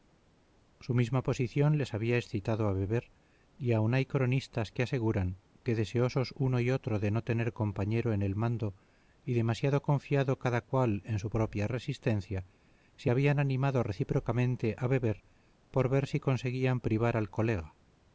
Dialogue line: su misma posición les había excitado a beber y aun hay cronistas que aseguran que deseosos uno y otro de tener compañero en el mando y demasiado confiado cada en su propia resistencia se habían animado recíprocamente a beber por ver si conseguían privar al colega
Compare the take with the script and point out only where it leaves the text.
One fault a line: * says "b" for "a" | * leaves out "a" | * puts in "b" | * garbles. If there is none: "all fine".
* puts in "no"
* puts in "cual"